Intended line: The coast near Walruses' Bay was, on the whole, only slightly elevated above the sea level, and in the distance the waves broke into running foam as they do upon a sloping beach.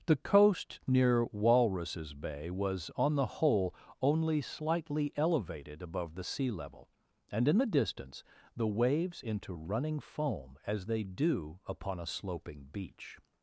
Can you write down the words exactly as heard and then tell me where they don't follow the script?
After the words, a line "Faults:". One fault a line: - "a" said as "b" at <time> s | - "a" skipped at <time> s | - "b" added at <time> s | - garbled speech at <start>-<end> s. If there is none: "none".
The coast near Walruses' Bay was, on the whole, only slightly elevated above the sea level, and in the distance the waves into running foam as they do upon a sloping beach.
Faults:
- "broke" skipped at 9.2 s